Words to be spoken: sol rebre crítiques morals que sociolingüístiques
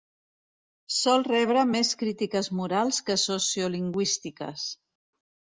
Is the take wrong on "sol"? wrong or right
right